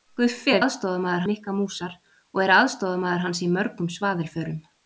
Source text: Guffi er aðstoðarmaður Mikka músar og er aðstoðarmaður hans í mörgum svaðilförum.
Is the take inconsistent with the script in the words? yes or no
no